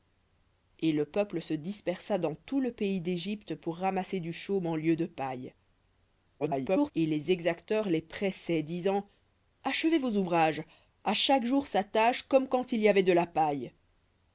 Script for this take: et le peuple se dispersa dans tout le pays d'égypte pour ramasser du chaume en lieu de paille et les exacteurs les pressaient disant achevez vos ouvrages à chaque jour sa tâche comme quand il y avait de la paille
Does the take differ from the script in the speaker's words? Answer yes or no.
yes